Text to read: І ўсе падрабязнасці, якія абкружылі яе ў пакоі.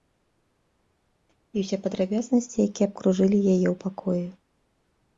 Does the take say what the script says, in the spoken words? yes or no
yes